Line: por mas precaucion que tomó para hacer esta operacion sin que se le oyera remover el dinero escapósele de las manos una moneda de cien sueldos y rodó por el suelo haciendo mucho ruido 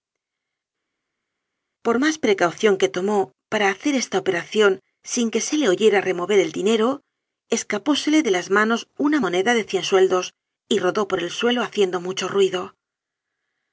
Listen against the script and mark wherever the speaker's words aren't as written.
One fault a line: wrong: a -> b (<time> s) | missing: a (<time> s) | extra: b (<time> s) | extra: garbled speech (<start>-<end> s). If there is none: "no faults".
no faults